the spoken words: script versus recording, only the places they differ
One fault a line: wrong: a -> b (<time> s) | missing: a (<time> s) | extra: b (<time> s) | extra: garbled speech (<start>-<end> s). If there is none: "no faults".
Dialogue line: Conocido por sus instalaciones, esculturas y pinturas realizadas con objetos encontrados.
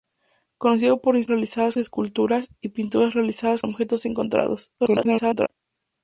wrong: instalaciones -> realizadas (1.3 s)
missing: con (3.6 s)
extra: garbled speech (4.8-5.5 s)